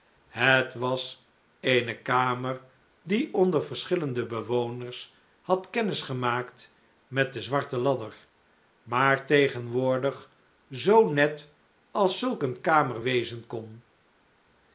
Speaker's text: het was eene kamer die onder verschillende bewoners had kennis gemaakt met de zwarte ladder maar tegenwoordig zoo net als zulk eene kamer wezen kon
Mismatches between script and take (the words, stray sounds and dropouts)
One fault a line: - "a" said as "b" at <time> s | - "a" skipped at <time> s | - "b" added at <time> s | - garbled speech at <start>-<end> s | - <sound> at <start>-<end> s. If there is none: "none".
none